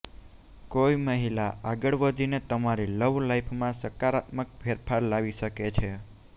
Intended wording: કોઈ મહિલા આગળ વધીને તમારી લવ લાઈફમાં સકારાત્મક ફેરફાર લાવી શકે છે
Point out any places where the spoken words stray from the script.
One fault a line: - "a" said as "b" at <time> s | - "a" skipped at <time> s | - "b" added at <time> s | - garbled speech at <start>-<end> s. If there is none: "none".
none